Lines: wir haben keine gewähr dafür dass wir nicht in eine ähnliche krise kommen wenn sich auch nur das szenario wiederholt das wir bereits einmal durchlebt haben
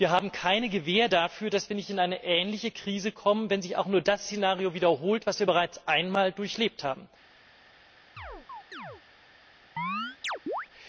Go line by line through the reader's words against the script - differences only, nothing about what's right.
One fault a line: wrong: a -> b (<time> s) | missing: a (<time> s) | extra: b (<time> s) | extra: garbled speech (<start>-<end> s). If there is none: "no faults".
no faults